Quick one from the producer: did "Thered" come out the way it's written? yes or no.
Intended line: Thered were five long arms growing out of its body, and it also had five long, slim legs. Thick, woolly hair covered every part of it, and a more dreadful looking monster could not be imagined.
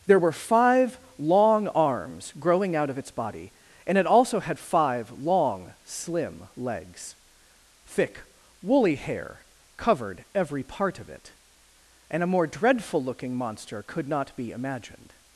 no